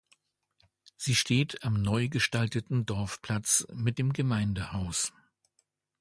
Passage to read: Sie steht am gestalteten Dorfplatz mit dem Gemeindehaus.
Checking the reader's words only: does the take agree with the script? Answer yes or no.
no